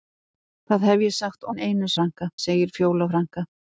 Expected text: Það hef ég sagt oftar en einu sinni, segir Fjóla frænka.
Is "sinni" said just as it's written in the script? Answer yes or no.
no